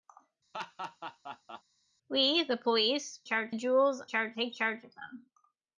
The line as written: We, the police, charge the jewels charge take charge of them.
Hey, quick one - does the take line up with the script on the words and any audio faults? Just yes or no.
no